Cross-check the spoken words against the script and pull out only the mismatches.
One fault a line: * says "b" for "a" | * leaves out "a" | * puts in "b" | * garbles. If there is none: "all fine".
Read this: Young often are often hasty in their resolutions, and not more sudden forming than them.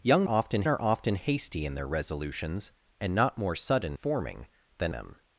all fine